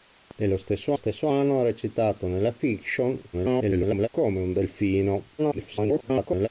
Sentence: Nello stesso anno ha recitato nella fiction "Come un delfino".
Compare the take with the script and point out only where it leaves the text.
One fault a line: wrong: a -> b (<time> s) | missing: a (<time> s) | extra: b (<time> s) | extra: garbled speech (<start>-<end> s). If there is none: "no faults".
extra: stesso (0.9 s)
extra: garbled speech (3.3-4.1 s)
extra: garbled speech (5.4-6.5 s)